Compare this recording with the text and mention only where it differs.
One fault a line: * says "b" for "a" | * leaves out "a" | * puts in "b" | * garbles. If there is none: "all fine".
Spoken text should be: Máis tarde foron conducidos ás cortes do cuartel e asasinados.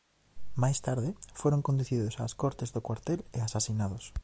all fine